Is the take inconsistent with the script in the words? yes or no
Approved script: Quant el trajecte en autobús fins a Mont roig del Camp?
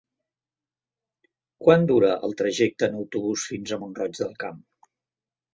yes